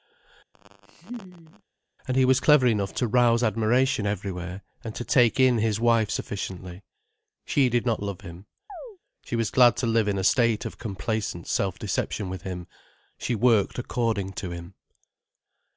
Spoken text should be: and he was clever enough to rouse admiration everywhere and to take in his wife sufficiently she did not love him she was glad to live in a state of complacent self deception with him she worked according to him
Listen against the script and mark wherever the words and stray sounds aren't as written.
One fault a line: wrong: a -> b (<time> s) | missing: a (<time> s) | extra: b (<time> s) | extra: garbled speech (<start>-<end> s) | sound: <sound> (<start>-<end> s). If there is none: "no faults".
sound: laugh (0.5-1.6 s)
sound: chirp (8.7-9.0 s)